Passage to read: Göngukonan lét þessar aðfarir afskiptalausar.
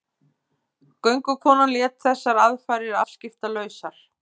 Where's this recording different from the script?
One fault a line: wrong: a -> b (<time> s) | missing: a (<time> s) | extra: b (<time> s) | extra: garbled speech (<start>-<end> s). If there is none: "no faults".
no faults